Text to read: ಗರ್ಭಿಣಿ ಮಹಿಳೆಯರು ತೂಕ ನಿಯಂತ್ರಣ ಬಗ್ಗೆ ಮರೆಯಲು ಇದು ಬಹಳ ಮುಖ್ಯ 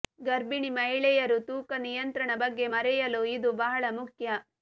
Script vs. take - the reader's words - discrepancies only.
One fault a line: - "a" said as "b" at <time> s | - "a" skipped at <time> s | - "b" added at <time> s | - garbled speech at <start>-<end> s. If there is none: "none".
none